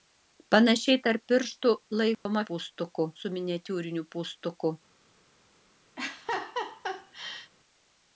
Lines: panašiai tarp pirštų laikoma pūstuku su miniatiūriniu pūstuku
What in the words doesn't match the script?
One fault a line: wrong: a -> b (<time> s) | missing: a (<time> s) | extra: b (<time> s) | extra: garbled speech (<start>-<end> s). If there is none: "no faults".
no faults